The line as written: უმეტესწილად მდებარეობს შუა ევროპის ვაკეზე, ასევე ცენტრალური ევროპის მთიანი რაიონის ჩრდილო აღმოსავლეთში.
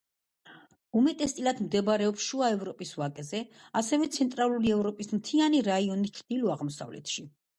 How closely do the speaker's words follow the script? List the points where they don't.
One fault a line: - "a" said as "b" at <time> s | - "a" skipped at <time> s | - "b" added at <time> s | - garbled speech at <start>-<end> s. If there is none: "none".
none